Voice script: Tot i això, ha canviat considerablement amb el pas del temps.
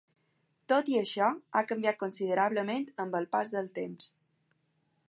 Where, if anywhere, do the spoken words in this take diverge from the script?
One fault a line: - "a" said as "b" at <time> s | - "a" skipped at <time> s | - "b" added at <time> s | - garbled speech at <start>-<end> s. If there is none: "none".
none